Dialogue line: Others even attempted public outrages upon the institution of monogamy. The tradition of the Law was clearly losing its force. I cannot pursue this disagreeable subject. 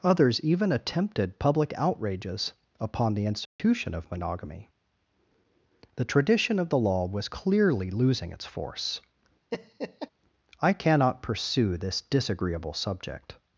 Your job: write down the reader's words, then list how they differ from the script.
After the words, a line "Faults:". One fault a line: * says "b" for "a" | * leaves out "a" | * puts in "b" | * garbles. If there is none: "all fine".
Others even attempted public outrages upon the institution of monogamy. The tradition of the Law was clearly losing its force. I cannot pursue this disagreeable subject.
Faults:
all fine